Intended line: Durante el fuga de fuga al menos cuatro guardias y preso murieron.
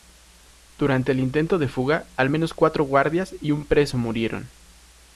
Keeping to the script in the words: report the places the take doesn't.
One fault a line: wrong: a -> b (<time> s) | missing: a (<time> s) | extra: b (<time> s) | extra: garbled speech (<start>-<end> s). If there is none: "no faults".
wrong: fuga -> intento (1.2 s)
extra: un (3.5 s)